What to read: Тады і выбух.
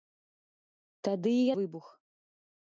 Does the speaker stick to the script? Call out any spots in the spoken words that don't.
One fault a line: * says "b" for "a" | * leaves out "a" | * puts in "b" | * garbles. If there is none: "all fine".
all fine